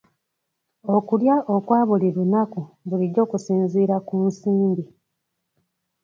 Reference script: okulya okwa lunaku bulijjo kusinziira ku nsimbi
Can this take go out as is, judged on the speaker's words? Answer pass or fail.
fail